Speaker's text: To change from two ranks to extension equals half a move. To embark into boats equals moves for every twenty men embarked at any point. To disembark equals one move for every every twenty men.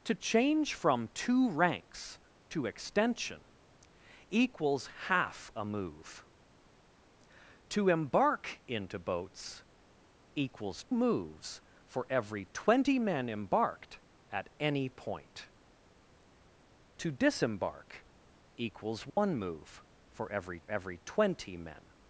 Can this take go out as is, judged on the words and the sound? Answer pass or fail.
fail